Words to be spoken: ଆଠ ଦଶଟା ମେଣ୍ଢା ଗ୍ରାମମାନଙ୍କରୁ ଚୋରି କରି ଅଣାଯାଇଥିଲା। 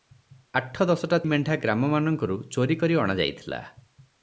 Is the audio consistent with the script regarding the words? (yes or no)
yes